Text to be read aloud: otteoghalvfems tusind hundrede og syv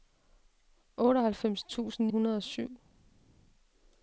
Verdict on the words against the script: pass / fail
pass